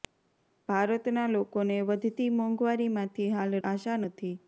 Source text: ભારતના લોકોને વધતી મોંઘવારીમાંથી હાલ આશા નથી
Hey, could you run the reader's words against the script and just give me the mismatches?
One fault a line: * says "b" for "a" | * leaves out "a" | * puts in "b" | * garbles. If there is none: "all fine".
all fine